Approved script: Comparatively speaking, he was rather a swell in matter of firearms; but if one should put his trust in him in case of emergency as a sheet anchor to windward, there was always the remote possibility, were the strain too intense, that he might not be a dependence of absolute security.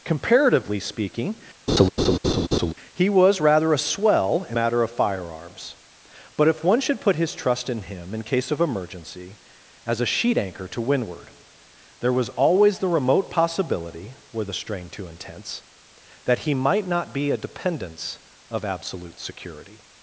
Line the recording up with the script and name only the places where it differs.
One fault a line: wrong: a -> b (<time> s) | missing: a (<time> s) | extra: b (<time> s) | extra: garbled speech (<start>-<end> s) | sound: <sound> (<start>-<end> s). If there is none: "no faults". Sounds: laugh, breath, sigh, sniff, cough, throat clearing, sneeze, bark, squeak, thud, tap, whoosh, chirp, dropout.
sound: laugh (1.7-2.7 s)